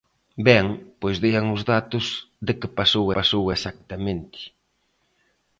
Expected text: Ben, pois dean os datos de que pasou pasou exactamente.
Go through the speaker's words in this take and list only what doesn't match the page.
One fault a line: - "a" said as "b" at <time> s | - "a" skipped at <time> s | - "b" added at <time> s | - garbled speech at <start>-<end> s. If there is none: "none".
none